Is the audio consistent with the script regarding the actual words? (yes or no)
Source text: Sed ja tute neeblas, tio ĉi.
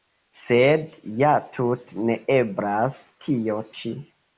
yes